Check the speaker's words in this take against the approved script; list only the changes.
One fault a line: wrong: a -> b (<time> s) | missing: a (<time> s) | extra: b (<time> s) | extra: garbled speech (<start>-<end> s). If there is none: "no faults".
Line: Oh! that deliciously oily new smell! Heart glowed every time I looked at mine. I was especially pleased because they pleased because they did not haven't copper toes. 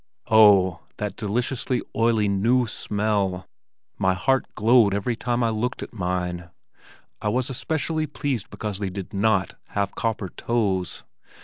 extra: My (4.0 s)
missing: pleased because they (8.9 s)
wrong: haven't -> have (9.7 s)